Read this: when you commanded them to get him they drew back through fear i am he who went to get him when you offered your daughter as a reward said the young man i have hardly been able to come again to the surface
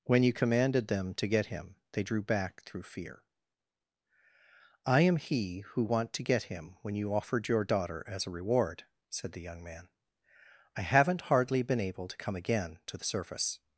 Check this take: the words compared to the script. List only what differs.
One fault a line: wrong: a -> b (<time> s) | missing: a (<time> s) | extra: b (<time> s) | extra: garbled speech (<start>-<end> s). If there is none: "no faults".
wrong: went -> want (5.8 s)
wrong: have -> haven't (10.8 s)